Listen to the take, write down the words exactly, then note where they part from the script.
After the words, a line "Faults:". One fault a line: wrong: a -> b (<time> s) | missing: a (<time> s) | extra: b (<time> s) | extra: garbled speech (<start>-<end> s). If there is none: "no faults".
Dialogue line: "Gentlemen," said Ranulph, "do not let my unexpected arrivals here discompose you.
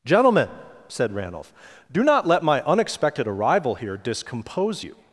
"Gentlemen," said Ranulph, "do not let my unexpected arrival here discompose you.
Faults:
wrong: arrivals -> arrival (3.3 s)